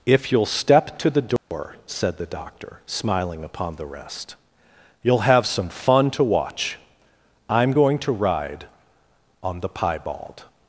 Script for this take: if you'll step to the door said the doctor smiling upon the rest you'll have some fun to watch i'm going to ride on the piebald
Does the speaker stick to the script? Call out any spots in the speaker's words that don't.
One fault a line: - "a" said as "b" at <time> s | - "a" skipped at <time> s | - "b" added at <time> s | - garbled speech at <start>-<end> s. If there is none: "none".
none